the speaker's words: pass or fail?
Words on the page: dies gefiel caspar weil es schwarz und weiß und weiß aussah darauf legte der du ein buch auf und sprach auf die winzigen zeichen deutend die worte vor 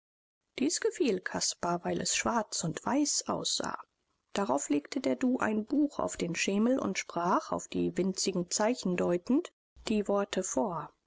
fail